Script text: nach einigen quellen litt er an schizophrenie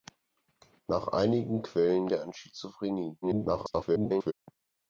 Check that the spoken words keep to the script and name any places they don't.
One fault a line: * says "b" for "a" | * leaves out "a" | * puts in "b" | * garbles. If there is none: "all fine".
* leaves out "litt"
* garbles